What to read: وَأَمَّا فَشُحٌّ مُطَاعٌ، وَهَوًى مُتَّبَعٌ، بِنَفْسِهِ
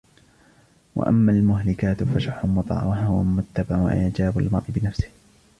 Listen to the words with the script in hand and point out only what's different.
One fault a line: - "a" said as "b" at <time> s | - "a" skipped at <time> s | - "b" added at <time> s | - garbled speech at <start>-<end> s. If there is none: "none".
- "الْمُهْلِكَاتُ" added at 1.3 s
- "وَإِعْجَابُ الْمَرْءِ" added at 3.8 s